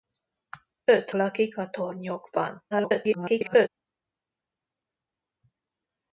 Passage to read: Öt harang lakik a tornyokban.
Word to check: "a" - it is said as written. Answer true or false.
true